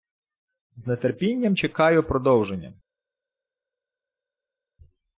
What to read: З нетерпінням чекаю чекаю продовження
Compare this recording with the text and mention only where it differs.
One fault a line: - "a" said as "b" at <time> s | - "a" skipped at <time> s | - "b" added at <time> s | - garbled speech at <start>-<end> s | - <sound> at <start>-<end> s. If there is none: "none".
- "чекаю" skipped at 2.0 s